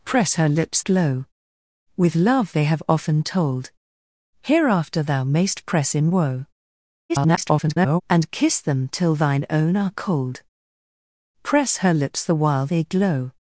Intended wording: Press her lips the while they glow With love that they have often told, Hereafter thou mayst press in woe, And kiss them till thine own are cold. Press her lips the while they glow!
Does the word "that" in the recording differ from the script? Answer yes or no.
yes